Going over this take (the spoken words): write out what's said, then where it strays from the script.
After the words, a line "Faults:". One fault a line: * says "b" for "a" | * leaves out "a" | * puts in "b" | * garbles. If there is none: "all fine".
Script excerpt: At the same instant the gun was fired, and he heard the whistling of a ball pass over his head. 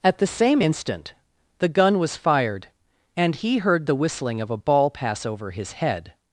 At the same instant the gun was fired, and he heard the whistling of a ball pass over his head.
Faults:
all fine